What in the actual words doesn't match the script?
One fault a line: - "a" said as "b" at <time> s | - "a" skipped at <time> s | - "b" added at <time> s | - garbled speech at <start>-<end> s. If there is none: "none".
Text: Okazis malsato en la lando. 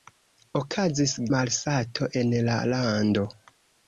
none